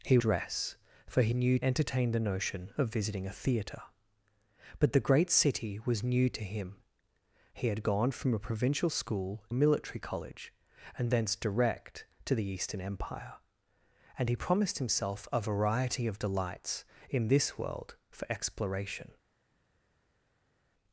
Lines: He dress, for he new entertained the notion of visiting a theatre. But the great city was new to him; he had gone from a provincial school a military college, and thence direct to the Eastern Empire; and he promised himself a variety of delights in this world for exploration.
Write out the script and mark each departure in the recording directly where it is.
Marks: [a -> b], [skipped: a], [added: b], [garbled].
He dress, for he new entertained the notion of visiting a theatre. But the great city was new to him; he had gone from a provincial school a military college, and thence direct to the Eastern Empire; and he promised himself a variety of delights in this world for exploration.